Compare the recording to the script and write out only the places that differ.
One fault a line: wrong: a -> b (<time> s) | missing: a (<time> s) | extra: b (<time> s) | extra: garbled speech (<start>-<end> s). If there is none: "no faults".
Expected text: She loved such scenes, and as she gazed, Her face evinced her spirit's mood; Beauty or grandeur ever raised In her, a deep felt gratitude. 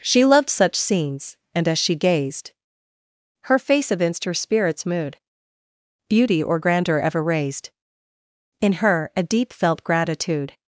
no faults